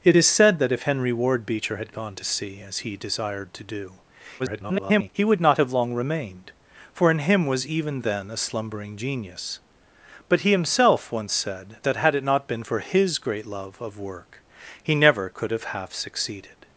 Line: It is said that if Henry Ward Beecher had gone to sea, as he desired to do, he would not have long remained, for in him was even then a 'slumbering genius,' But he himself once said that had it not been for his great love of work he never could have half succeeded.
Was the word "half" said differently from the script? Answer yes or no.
no